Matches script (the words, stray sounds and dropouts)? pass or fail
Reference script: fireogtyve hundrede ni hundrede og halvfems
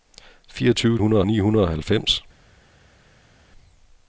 pass